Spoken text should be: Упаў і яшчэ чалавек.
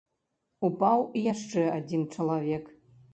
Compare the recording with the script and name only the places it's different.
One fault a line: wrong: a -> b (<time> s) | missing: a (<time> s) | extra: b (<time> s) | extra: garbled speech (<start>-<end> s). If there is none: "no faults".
extra: адзін (1.8 s)